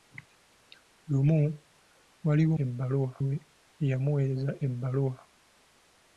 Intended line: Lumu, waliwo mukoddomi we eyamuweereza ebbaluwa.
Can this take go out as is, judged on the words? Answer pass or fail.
fail